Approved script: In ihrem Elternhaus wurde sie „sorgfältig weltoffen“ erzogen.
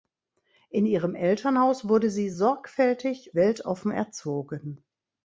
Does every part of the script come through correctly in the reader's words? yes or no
yes